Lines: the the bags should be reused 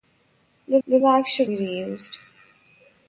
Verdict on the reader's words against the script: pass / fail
pass